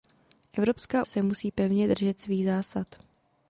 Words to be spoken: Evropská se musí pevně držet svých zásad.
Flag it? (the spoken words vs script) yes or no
no